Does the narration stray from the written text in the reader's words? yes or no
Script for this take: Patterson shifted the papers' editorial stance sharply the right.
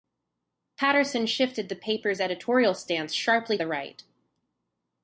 no